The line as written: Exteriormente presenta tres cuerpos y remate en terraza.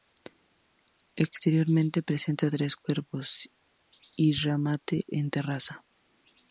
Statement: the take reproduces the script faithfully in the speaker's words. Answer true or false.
true